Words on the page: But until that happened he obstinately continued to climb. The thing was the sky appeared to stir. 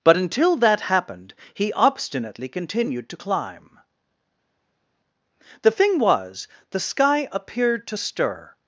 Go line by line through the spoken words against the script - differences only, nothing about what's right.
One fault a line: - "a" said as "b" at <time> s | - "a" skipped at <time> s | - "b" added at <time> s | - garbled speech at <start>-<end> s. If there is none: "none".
none